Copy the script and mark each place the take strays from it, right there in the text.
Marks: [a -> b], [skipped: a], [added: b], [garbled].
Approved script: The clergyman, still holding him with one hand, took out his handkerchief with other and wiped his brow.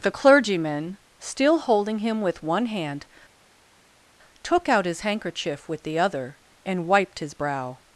The clergyman, still holding him with one hand, took out his handkerchief with [added: the] other and wiped his brow.